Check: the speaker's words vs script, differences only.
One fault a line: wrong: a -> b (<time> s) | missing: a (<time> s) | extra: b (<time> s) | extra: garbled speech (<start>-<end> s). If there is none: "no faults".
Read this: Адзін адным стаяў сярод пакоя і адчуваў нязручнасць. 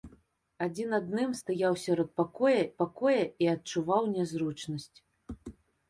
extra: пакоя (2.8 s)